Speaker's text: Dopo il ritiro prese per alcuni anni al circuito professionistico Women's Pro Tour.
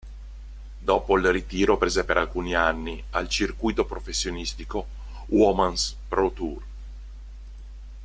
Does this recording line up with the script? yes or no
yes